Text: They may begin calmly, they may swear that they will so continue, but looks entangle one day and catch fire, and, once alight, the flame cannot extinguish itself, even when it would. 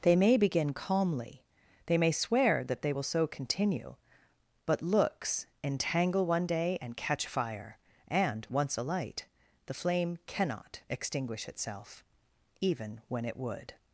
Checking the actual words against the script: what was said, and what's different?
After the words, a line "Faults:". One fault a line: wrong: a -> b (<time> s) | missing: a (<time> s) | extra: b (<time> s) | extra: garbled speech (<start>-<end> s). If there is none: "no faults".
They may begin calmly, they may swear that they will so continue, but looks entangle one day and catch fire, and, once alight, the flame cannot extinguish itself, even when it would.
Faults:
no faults